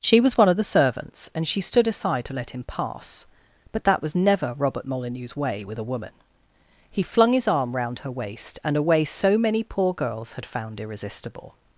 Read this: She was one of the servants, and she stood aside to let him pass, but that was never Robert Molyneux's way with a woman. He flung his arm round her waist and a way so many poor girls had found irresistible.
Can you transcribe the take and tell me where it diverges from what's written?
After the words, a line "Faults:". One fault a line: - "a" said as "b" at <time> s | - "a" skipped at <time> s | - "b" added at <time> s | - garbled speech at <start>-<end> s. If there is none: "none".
She was one of the servants, and she stood aside to let him pass, but that was never Robert Molyneux's way with a woman. He flung his arm round her waist and a way so many poor girls had found irresistible.
Faults:
none